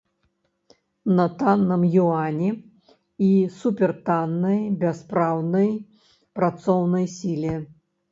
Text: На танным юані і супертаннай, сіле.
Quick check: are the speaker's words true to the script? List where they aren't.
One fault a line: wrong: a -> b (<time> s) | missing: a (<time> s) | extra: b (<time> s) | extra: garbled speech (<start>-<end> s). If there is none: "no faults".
extra: бяспраўнай працоўнай (4.8 s)